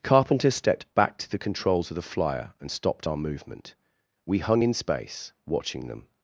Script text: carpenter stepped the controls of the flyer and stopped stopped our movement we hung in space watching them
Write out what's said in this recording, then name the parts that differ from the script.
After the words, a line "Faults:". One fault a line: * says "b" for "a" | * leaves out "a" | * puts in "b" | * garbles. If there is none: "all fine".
carpenter stepped back to the controls of the flyer and stopped our movement we hung in space watching them
Faults:
* puts in "back to"
* leaves out "stopped"